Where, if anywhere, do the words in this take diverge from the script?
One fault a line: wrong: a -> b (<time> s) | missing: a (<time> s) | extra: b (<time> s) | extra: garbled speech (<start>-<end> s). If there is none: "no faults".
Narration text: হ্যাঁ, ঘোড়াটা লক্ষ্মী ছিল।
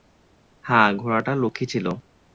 no faults